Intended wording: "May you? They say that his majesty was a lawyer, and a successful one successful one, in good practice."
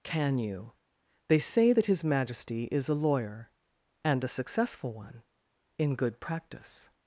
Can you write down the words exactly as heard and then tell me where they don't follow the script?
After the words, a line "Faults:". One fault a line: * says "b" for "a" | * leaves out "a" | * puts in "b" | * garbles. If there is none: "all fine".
"Can you? They say that his majesty is a lawyer, and a successful one, in good practice."
Faults:
* says "Can" for "May"
* says "is" for "was"
* leaves out "successful one"